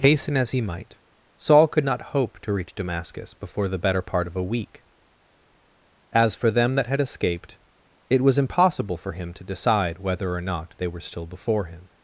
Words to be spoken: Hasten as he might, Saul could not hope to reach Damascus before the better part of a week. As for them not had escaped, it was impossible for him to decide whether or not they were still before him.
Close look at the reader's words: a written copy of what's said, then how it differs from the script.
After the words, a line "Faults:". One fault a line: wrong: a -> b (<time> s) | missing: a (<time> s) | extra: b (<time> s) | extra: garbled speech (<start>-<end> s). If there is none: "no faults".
Hasten as he might, Saul could not hope to reach Damascus before the better part of a week. As for them that had escaped, it was impossible for him to decide whether or not they were still before him.
Faults:
wrong: not -> that (6.8 s)